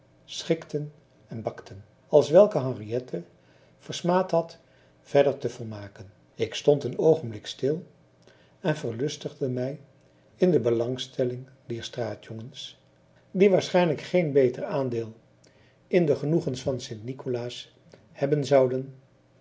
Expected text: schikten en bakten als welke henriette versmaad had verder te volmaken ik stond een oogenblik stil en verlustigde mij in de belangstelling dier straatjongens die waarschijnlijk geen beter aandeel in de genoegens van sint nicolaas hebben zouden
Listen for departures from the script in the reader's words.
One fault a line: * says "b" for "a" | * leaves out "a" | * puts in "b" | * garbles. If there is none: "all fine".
all fine